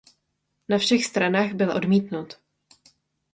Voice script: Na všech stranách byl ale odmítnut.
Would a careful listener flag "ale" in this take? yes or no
yes